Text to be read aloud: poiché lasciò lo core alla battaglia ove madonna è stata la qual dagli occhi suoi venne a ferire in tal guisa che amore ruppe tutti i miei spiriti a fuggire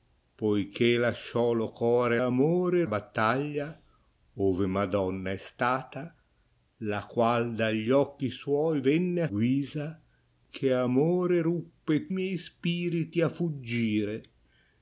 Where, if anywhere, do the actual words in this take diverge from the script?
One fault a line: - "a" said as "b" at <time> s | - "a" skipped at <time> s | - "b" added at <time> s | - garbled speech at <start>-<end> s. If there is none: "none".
- "alla" said as "amore" at 2.2 s
- "ferire in tal" skipped at 9.3 s
- "tutti" skipped at 12.1 s